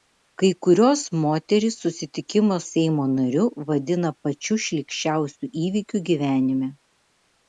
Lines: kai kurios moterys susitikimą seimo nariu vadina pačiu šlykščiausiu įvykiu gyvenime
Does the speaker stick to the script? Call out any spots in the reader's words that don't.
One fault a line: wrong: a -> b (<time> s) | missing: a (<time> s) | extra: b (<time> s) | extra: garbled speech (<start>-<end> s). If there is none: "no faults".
no faults